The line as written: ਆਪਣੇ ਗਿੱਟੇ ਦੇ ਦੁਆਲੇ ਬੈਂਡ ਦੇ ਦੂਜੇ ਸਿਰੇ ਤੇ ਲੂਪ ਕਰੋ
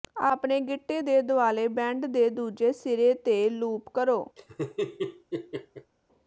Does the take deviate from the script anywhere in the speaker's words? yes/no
no